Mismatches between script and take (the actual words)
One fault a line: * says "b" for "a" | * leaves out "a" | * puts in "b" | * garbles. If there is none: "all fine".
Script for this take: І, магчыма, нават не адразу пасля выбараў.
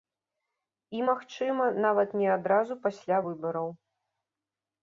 all fine